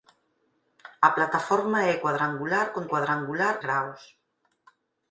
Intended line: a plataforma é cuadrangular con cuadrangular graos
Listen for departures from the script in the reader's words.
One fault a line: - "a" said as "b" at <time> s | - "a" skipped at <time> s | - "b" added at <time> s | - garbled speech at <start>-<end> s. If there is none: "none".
none